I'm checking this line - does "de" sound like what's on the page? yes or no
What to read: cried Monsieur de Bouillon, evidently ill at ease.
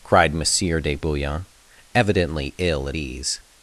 yes